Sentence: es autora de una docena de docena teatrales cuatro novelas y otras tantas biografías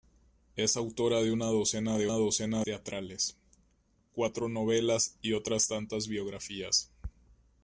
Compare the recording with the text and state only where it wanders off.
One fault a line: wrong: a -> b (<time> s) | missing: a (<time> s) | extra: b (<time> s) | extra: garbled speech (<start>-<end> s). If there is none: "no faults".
no faults